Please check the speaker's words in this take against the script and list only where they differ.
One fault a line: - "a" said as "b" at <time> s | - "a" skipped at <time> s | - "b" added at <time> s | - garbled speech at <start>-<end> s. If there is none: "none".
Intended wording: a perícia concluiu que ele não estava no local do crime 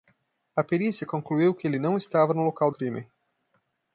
- "do" skipped at 2.7 s